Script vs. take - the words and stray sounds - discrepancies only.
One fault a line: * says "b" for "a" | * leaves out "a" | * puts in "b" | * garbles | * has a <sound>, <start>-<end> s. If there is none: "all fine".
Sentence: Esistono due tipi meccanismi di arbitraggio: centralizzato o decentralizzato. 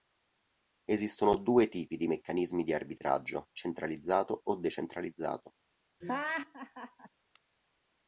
* puts in "di"
* has a laugh, 6.0-7.1 s